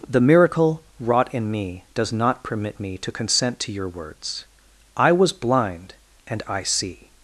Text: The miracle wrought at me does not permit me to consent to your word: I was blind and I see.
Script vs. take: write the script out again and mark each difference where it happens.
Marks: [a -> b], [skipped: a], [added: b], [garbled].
The miracle wrought [at -> in] me does not permit me to consent to your [word: -> words] I was blind and I see.